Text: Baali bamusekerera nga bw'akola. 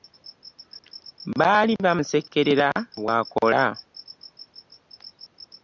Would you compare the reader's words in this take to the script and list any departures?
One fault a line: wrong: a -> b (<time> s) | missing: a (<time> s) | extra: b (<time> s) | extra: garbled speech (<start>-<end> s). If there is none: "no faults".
missing: nga (2.7 s)